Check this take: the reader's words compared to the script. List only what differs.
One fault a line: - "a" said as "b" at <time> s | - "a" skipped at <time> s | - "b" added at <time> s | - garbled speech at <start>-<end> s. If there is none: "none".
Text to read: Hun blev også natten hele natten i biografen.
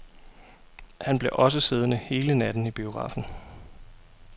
- "Hun" said as "Han" at 1.0 s
- "natten" said as "siddende" at 1.6 s